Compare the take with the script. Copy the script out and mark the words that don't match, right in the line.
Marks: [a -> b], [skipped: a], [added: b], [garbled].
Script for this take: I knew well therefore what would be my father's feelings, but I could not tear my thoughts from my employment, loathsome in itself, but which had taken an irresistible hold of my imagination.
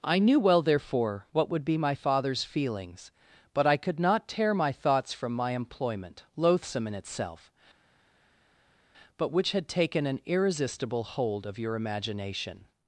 I knew well therefore what would be my father's feelings, but I could not tear my thoughts from my employment, loathsome in itself, but which had taken an irresistible hold of [my -> your] imagination.